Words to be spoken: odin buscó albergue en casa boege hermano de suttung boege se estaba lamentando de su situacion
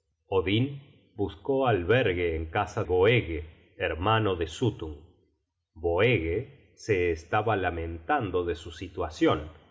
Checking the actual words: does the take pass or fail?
pass